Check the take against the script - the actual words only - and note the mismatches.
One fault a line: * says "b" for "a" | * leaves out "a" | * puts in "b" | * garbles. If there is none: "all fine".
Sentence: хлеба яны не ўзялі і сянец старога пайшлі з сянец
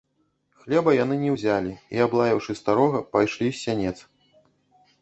* says "аблаяўшы" for "сянец"